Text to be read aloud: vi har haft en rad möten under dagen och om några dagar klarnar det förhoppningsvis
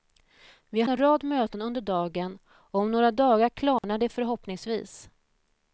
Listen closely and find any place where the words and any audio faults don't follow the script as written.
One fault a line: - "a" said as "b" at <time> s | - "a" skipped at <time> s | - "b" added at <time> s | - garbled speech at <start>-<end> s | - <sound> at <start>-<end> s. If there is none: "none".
- "haft" skipped at 0.9 s
- dropout at 3.8-3.8 s